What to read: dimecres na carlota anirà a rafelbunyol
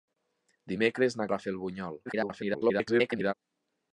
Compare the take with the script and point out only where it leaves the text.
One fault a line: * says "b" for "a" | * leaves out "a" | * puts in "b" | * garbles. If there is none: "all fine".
* leaves out "carlota anirà"
* garbles